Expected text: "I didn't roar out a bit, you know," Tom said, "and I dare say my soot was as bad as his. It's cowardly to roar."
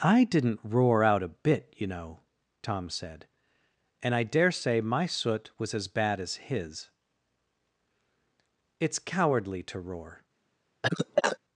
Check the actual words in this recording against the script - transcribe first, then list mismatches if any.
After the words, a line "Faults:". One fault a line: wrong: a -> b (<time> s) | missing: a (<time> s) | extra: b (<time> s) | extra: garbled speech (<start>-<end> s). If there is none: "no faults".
"I didn't roar out a bit, you know," Tom said, "and I dare say my soot was as bad as his. It's cowardly to roar."
Faults:
no faults